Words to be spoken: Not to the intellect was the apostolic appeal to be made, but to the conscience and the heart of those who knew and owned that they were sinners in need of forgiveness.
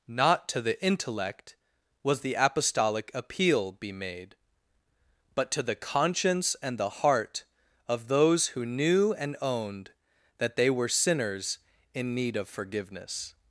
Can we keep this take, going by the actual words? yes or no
no